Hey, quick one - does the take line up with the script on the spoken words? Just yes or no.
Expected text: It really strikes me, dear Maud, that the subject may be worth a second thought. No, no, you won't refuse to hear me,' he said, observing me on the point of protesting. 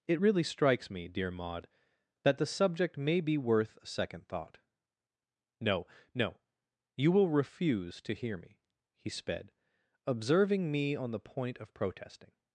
no